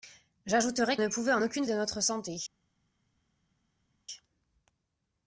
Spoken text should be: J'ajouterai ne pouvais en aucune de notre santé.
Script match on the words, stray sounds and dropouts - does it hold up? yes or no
yes